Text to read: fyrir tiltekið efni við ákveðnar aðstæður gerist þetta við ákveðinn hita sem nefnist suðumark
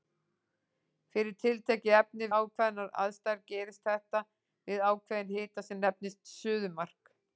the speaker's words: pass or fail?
fail